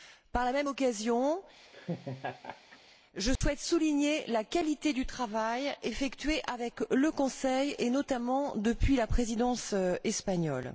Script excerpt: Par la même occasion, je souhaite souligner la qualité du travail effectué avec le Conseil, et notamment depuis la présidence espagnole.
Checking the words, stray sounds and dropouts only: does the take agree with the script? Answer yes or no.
no